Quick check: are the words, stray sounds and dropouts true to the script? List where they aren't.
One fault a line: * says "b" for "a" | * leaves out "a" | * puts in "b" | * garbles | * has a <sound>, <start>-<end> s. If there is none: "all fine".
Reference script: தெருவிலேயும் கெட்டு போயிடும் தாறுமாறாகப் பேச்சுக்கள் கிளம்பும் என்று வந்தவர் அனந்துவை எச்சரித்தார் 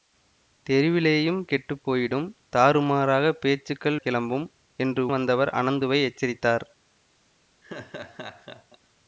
* has a laugh, 7.6-8.8 s